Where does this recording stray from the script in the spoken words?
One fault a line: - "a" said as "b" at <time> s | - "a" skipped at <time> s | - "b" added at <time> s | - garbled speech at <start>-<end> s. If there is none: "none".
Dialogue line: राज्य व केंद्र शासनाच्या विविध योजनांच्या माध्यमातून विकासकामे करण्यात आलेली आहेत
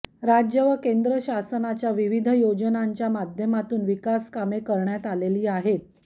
none